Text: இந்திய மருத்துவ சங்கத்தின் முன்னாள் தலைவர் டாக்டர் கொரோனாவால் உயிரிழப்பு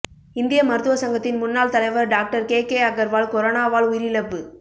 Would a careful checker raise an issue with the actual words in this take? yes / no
yes